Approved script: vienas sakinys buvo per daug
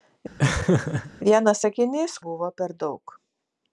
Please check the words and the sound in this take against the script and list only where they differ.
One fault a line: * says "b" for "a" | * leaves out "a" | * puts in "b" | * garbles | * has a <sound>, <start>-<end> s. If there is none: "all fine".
* has a laugh, 0.4-1.1 s